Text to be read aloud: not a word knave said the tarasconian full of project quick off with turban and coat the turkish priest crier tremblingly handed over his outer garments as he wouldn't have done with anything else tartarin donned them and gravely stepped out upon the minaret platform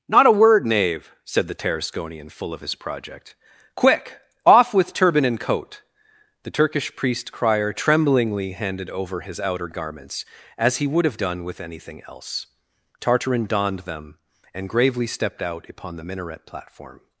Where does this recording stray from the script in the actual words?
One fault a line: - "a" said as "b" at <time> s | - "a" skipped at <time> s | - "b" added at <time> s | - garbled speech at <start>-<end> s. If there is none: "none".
- "his" added at 2.6 s
- "wouldn't" said as "would" at 10.9 s